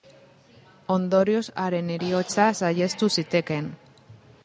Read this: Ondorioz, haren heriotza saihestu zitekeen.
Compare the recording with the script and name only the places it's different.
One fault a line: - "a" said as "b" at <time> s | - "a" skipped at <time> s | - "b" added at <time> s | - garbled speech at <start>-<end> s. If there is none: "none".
none